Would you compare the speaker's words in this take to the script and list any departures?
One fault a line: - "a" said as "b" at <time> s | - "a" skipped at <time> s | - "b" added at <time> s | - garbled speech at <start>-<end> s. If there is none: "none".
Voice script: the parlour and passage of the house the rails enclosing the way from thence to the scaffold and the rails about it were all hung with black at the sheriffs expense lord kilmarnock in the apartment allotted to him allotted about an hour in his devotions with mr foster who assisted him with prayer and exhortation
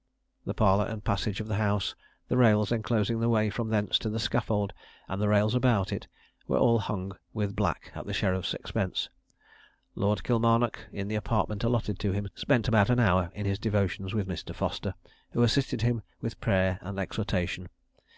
- "allotted" said as "spent" at 12.3 s